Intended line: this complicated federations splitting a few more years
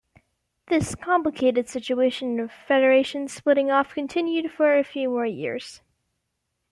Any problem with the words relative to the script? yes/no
yes